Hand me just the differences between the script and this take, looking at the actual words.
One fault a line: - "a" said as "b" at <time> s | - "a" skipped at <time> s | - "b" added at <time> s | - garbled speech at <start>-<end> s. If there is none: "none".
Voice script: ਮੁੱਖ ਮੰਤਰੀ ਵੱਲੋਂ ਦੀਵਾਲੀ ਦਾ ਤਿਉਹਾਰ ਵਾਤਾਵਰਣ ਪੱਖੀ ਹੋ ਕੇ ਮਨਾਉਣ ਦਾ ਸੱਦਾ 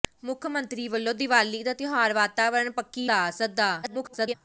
- "ਹੋ ਕੇ ਮਨਾਉਣ" skipped at 3.1 s
- garbled speech at 3.8-4.3 s